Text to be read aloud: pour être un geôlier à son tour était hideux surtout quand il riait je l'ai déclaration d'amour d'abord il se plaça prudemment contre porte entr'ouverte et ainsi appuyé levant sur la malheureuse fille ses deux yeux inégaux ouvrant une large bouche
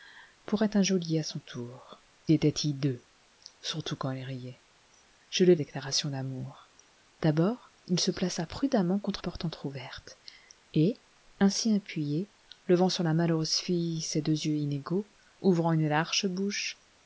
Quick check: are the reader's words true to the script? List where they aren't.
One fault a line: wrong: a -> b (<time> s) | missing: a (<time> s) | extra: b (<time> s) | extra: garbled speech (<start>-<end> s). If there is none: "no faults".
no faults